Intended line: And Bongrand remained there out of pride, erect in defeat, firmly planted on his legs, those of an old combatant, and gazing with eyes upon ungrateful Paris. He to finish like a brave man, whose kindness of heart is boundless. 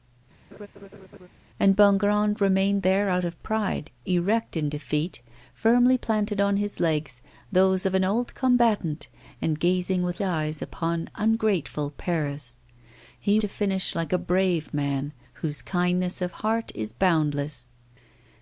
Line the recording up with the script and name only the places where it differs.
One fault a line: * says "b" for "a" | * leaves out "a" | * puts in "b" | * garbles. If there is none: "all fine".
all fine